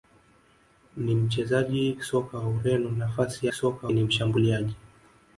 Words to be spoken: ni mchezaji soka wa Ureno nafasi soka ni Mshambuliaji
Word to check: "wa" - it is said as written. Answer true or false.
true